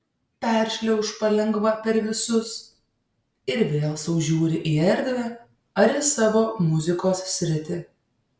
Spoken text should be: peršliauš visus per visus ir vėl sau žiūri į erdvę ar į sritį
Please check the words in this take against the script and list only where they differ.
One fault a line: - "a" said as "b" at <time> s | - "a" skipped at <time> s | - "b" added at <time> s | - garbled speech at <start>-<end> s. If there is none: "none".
- "visus" said as "palengva" at 1.2 s
- "savo muzikos" added at 6.1 s